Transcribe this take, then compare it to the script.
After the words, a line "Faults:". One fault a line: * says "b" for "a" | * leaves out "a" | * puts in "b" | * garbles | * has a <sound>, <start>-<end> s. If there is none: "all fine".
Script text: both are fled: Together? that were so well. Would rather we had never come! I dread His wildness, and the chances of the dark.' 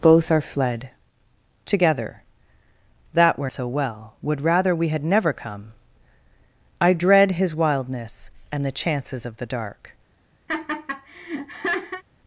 both are fled: Together? that were so well. Would rather we had never come! I dread His wildness, and the chances of the dark.'
Faults:
* has a laugh, 10.5-12.0 s